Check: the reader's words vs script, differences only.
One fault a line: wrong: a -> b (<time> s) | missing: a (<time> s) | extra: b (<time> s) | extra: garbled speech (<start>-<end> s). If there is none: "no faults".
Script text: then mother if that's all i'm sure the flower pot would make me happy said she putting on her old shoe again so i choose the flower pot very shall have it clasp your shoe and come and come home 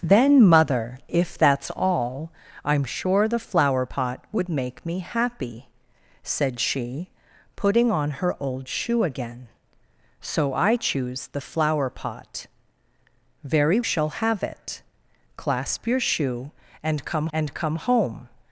no faults